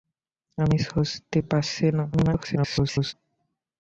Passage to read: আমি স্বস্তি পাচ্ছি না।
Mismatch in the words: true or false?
true